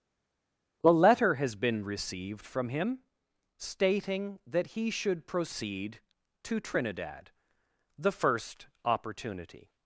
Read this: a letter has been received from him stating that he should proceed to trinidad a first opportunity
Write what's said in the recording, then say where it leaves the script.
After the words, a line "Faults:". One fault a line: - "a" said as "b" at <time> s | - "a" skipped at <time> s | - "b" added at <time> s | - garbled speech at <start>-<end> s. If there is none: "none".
a letter has been received from him stating that he should proceed to trinidad the first opportunity
Faults:
- "a" said as "the" at 8.0 s